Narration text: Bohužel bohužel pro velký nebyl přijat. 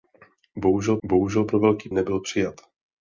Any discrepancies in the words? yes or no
no